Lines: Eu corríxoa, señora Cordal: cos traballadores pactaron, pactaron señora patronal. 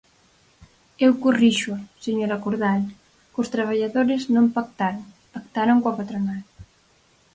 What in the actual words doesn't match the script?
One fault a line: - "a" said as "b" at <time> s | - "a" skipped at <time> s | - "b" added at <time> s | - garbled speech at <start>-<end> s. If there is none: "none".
- "non" added at 4.3 s
- "señora" said as "coa" at 5.8 s